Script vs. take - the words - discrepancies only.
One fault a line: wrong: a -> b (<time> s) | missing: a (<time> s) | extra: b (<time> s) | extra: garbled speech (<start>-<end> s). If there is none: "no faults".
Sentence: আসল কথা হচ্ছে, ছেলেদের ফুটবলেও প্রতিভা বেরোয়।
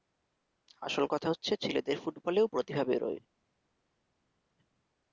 no faults